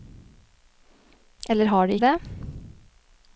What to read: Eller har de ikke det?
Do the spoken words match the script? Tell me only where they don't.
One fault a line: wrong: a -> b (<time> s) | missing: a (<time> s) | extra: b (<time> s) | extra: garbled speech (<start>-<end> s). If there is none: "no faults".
missing: ikke (1.9 s)